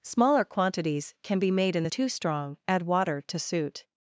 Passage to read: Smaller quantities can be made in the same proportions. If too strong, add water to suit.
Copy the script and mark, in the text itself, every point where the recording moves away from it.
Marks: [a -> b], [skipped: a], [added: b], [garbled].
Smaller quantities can be made in the [skipped: same proportions. If] too strong, add water to suit.